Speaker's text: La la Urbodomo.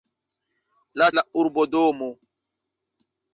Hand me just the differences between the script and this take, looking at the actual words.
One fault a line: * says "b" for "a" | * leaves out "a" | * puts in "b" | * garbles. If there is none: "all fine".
all fine